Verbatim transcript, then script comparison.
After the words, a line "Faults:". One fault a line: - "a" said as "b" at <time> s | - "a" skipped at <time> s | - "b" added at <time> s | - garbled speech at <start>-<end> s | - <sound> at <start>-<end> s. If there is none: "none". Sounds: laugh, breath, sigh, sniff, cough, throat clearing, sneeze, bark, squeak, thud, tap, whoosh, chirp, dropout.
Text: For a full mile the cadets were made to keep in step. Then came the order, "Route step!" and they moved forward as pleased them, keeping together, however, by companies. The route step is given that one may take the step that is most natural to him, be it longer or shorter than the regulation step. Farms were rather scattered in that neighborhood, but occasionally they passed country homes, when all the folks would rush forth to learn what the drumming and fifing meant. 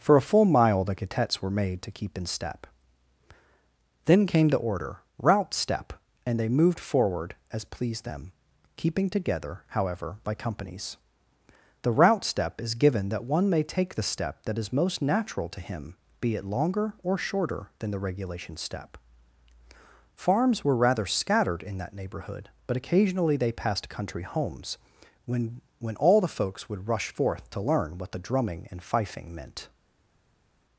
For a full mile the cadets were made to keep in step. Then came the order, "Route step!" and they moved forward as pleased them, keeping together, however, by companies. The route step is given that one may take the step that is most natural to him, be it longer or shorter than the regulation step. Farms were rather scattered in that neighborhood, but occasionally they passed country homes, when when all the folks would rush forth to learn what the drumming and fifing meant.
Faults:
- "when" added at 25.8 s